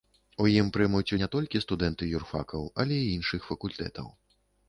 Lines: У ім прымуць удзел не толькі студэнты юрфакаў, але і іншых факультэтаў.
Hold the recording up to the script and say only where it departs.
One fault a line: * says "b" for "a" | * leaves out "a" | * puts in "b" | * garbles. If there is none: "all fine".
* leaves out "удзел"